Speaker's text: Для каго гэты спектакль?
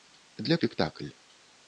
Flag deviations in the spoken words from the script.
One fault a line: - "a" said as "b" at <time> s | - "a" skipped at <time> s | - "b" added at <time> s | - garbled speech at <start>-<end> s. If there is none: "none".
- "каго гэты" skipped at 0.6 s